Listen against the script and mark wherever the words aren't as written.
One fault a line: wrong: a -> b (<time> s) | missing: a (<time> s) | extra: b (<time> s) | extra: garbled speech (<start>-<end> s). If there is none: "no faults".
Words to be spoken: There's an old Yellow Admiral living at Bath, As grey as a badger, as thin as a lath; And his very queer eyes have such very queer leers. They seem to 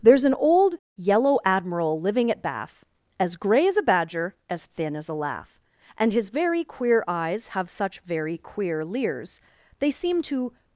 no faults